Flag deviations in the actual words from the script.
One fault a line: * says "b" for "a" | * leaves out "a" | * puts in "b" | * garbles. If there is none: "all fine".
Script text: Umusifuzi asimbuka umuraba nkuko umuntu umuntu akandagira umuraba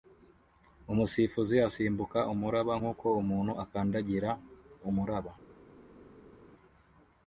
* leaves out "umuntu"